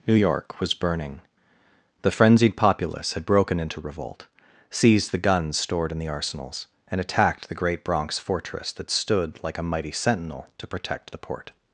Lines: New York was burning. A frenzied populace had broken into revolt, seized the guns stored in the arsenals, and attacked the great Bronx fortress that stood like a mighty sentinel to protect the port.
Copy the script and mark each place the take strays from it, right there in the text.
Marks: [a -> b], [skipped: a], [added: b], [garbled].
New York was burning. [A -> The] frenzied populace had broken into revolt, seized the guns stored in the arsenals, and attacked the great Bronx fortress that stood like a mighty sentinel to protect the port.